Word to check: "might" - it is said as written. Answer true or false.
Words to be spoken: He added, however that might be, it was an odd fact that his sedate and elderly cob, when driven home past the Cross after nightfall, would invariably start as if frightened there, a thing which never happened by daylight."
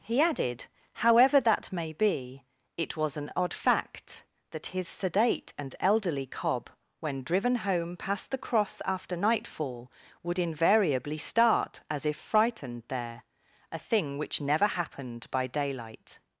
false